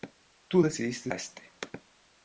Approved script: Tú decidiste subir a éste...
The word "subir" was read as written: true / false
false